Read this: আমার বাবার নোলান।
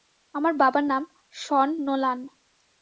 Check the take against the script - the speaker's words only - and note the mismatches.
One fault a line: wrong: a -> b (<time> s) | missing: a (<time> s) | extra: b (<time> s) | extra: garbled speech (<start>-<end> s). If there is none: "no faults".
extra: নাম শন (0.8 s)